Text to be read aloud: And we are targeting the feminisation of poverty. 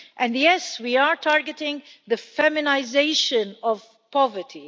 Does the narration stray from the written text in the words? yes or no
yes